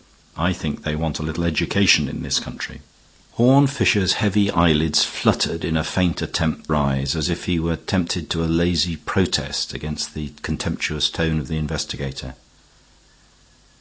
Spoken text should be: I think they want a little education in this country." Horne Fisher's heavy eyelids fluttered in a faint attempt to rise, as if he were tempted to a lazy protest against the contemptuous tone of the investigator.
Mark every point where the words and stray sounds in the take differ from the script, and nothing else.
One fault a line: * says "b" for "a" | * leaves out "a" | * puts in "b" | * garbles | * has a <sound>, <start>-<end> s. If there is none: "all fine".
* leaves out "to"